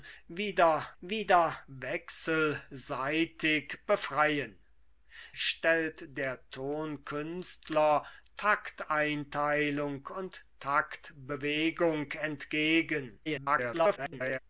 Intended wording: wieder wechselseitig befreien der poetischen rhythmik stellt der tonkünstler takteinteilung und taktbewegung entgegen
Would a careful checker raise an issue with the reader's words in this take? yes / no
yes